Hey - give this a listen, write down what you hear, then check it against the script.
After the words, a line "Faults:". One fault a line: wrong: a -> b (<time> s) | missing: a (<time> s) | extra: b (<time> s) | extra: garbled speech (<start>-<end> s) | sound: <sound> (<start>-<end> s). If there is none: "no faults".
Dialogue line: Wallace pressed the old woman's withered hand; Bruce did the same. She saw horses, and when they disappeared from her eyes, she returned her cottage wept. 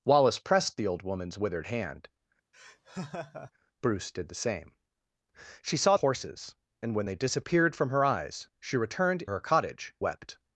Wallace pressed the old woman's withered hand; Bruce did the same. She saw horses, and when they disappeared from her eyes, she returned her cottage wept.
Faults:
sound: laugh (2.5-3.5 s)